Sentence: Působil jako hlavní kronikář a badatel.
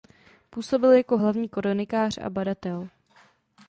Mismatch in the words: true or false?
false